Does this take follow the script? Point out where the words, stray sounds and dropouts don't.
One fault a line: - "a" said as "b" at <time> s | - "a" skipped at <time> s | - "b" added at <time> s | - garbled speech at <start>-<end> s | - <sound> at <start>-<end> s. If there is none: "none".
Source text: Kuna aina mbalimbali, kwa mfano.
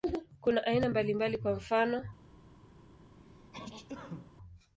- sneeze at 3.1-4.3 s